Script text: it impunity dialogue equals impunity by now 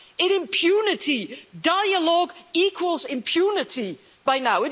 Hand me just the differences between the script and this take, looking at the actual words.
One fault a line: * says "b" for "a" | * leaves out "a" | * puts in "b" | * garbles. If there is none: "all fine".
all fine